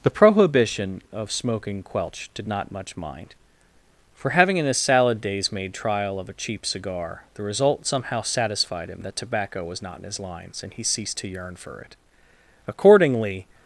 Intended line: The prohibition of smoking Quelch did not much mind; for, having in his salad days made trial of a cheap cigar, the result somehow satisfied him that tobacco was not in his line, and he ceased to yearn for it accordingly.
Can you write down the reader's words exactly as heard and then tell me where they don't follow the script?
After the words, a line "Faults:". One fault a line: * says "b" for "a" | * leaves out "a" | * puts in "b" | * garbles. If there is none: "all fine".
The prohibition of smoking Quelch did not much mind; for, having in his salad days made trial of a cheap cigar, the result somehow satisfied him that tobacco was not in his lines, and he ceased to yearn for it accordingly.
Faults:
* says "lines" for "line"